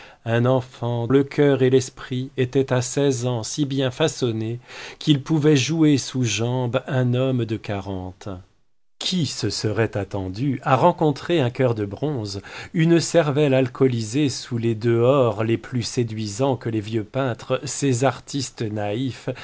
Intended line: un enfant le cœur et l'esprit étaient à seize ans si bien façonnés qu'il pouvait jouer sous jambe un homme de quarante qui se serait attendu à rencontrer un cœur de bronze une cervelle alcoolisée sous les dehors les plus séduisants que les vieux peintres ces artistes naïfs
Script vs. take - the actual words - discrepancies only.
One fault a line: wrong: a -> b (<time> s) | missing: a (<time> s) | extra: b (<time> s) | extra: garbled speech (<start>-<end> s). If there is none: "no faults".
no faults